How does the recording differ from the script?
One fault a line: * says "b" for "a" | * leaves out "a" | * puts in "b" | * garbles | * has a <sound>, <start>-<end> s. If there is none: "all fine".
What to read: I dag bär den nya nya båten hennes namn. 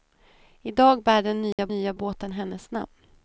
* has a dropout, 1.5-1.6 s